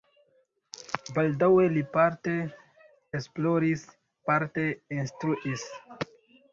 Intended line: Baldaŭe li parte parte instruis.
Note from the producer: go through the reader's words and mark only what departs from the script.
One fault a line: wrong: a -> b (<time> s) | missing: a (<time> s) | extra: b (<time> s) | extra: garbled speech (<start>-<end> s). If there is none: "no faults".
extra: esploris (3.2 s)